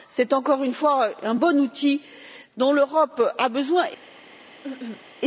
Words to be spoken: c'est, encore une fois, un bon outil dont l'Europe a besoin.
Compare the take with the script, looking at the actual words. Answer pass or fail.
pass